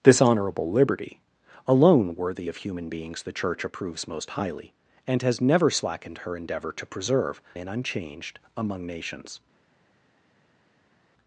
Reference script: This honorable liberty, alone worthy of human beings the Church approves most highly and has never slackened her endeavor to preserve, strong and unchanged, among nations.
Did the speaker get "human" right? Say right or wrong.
right